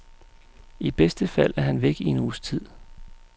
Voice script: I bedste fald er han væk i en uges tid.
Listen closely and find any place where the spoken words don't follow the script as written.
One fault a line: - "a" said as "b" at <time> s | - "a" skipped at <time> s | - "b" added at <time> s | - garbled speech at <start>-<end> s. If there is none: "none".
none